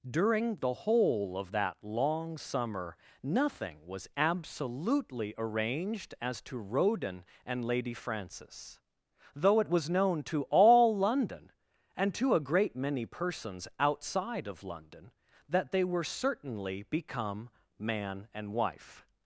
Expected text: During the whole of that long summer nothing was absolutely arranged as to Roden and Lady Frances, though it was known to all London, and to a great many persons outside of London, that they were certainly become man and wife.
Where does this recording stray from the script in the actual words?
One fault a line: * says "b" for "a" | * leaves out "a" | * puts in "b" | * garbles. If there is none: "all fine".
all fine